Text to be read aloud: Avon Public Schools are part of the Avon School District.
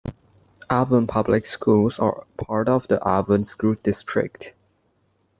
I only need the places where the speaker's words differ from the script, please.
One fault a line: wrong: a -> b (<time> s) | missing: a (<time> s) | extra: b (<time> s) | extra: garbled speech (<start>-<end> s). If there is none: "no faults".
no faults